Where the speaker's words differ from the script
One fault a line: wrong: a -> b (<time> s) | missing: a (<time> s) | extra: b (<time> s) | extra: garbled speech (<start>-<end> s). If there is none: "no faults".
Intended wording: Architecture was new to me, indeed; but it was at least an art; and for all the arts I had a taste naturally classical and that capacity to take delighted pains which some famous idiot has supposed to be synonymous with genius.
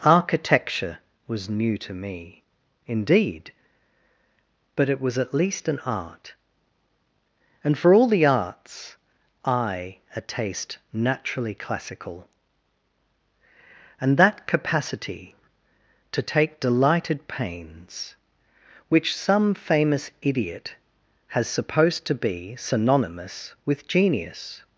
missing: had (10.0 s)